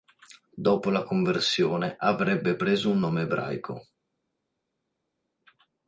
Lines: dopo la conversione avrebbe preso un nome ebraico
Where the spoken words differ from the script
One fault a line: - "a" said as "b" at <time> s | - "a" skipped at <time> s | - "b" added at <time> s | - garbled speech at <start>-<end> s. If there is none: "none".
none